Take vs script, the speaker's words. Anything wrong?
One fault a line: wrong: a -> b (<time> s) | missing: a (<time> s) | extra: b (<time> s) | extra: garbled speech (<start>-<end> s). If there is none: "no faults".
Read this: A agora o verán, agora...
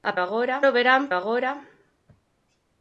no faults